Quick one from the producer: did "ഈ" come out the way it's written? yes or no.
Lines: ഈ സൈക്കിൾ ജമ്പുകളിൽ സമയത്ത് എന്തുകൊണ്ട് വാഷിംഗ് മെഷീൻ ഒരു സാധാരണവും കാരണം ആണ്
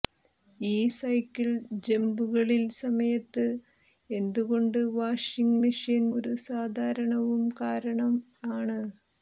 yes